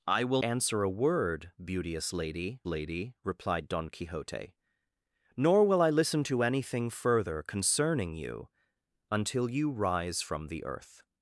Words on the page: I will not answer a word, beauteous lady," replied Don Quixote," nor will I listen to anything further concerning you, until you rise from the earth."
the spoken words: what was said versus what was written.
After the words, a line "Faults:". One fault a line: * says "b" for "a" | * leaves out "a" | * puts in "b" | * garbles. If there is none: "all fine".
I will answer a word, beauteous lady lady," replied Don Quixote," nor will I listen to anything further concerning you, until you rise from the earth."
Faults:
* leaves out "not"
* puts in "lady"